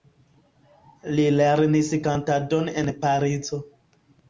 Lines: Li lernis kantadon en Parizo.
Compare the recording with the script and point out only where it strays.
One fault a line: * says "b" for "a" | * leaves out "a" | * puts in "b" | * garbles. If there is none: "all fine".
all fine